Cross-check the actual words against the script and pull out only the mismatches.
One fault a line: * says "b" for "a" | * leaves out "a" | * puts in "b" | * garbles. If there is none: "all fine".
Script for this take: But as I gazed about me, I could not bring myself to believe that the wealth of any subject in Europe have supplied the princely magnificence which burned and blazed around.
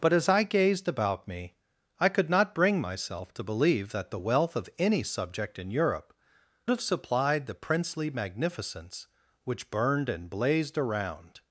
all fine